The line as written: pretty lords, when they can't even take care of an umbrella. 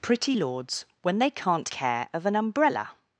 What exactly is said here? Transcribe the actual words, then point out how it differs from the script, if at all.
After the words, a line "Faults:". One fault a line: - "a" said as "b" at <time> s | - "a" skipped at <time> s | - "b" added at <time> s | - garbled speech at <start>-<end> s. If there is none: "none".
pretty lords, when they can't care of an umbrella.
Faults:
- "even take" skipped at 1.7 s